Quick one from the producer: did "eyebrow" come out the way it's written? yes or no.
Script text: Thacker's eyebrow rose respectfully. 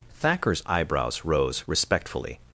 no